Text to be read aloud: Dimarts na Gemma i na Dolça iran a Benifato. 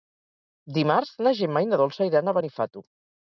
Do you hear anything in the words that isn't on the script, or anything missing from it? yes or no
no